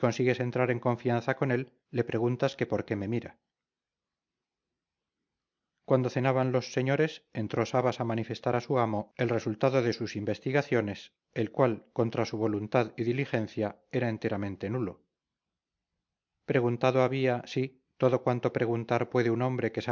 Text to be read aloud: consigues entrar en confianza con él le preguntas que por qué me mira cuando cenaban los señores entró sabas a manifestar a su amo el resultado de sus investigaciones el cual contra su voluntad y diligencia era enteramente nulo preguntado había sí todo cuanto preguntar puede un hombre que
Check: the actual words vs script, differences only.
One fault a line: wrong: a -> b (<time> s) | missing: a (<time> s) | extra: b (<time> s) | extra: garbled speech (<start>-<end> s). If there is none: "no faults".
no faults